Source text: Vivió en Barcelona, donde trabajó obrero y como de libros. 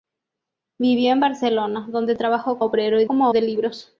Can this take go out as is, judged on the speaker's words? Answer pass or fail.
pass